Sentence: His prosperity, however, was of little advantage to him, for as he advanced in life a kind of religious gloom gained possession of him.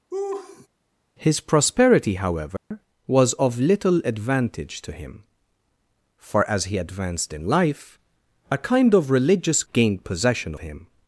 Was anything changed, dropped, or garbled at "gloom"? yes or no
yes